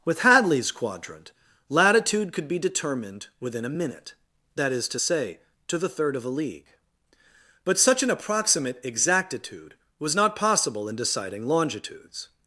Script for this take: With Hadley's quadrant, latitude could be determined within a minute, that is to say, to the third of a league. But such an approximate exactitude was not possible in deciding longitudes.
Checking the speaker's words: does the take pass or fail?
pass